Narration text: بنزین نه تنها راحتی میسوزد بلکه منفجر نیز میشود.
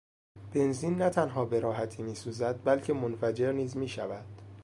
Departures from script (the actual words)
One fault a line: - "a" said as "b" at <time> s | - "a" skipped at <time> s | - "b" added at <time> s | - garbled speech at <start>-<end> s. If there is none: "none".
- "به" added at 1.5 s